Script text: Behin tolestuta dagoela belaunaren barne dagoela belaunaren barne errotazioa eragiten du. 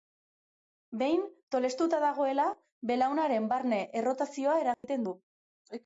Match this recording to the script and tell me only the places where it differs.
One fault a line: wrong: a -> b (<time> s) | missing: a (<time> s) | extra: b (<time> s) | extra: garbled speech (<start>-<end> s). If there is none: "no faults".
missing: dagoela belaunaren barne (3.8 s)